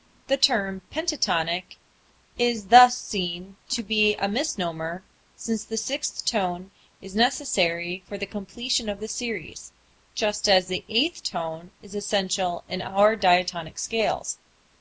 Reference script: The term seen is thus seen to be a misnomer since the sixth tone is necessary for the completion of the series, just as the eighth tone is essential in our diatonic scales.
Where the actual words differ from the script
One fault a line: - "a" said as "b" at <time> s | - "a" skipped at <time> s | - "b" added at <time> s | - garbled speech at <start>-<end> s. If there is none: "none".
- "seen" said as "pentatonic" at 0.9 s